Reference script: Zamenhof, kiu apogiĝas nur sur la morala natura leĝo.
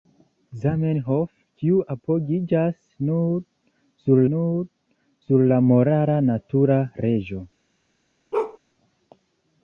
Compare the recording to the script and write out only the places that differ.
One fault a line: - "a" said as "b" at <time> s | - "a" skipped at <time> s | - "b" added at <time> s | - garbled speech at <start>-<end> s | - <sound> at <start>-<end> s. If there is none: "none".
- "nur sur" added at 4.3 s
- bark at 8.3-8.6 s